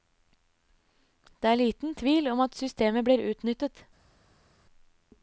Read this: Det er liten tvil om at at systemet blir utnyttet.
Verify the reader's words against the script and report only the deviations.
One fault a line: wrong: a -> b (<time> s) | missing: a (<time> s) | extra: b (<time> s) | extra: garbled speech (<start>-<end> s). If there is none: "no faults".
missing: at (2.5 s)